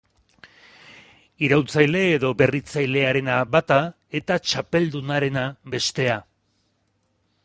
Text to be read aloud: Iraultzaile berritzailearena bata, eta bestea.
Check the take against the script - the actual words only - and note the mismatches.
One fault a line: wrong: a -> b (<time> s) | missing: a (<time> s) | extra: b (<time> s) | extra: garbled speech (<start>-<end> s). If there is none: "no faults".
extra: edo (2.1 s)
extra: txapeldunarena (4.5 s)